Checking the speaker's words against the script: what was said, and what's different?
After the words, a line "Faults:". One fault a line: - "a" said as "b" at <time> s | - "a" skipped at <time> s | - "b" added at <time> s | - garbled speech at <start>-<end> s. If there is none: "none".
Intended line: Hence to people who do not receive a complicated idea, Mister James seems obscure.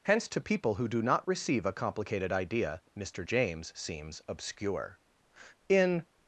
Hence to people who do not receive a complicated idea, Mister James seems obscure. In
Faults:
- "In" added at 5.7 s